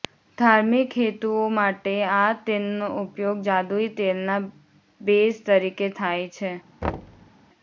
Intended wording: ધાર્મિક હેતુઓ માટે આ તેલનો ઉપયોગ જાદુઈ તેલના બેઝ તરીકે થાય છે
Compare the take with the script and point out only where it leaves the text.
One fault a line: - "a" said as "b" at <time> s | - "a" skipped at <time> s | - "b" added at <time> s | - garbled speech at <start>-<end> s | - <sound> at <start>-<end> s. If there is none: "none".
- thud at 6.8-7.3 s